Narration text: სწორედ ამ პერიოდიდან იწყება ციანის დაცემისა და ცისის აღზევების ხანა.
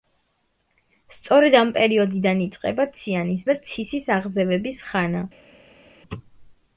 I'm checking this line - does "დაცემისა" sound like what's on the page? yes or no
no